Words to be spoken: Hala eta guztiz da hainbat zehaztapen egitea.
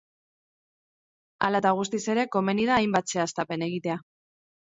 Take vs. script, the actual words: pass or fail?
fail